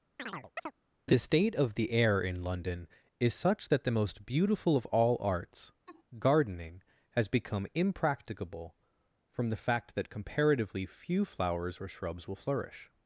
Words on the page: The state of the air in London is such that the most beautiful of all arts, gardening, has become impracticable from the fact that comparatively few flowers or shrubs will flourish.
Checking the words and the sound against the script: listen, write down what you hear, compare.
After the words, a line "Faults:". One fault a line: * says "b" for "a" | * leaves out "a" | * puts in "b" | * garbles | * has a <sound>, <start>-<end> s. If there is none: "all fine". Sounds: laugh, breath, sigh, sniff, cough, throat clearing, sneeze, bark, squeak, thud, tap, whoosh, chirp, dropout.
The state of the air in London is such that the most beautiful of all arts, gardening, has become impracticable from the fact that comparatively few flowers or shrubs will flourish.
Faults:
* has a chirp, 0.2-0.7 s
* has a laugh, 5.9-6.0 s